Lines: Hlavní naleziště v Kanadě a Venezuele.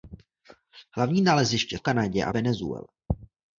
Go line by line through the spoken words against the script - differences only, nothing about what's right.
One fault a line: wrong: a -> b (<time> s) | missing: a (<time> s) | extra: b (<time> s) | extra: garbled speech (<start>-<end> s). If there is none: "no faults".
no faults